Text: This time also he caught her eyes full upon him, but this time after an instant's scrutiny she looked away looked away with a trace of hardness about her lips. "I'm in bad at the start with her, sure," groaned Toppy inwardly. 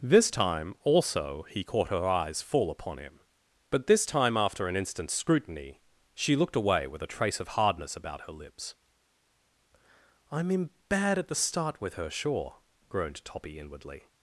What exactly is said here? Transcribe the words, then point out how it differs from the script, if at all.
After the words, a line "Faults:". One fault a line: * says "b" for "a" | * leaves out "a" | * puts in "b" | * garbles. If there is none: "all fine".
This time also he caught her eyes full upon him, but this time after an instant's scrutiny she looked away with a trace of hardness about her lips. "I'm in bad at the start with her, sure," groaned Toppy inwardly.
Faults:
* leaves out "looked away"